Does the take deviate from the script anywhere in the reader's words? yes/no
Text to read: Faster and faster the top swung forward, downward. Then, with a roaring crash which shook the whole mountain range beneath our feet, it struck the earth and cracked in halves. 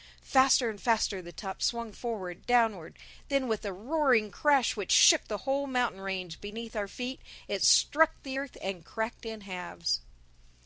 no